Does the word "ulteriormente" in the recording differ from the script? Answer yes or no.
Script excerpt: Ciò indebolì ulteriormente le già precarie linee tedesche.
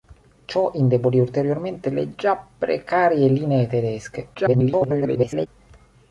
no